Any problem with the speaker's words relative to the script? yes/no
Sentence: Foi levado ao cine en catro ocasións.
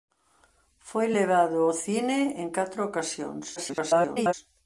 yes